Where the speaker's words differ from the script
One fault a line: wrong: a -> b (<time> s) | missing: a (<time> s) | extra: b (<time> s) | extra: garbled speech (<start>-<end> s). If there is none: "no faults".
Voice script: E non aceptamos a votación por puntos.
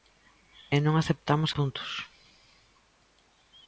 missing: a votación por (1.5 s)